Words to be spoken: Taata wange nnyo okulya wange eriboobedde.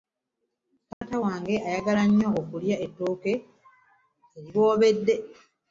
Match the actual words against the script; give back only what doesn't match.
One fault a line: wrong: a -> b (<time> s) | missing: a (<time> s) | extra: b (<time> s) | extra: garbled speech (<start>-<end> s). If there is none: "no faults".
extra: ayagala (1.7 s)
wrong: wange -> ettooke (2.8 s)